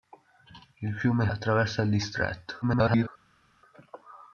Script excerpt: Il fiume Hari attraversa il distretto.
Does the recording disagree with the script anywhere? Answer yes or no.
yes